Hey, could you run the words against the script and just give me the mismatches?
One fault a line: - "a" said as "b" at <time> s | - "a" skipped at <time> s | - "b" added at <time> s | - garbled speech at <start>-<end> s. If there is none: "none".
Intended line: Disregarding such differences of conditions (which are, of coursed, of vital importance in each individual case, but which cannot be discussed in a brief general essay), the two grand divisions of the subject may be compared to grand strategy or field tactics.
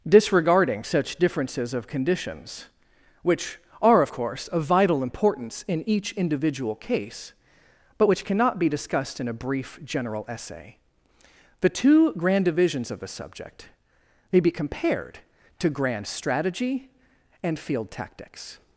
- "coursed" said as "course" at 4.1 s
- "or" said as "and" at 17.4 s